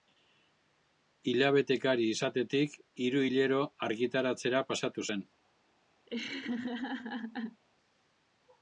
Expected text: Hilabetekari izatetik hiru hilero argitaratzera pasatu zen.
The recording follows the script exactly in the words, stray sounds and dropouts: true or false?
false